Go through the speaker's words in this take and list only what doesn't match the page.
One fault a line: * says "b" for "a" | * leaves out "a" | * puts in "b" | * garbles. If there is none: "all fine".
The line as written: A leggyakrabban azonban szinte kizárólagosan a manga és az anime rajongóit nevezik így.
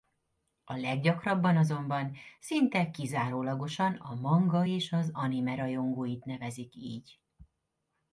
all fine